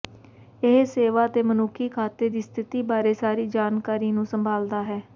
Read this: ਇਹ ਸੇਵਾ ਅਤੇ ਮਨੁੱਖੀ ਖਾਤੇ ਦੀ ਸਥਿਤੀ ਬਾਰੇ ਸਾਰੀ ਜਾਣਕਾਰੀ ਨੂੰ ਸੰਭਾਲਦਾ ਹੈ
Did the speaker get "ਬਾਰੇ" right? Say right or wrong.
right